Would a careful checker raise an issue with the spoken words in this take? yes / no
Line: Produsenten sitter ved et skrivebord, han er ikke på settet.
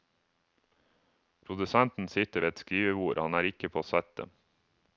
no